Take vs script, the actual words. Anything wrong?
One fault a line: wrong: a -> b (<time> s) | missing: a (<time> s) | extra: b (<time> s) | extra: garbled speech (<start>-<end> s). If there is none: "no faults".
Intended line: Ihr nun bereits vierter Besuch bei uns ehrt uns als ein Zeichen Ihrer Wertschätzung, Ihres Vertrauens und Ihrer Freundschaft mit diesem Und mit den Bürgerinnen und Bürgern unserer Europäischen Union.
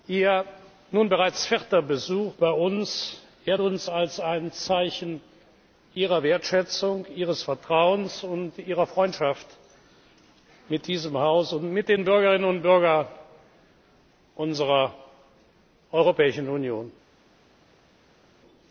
extra: Haus (11.2 s)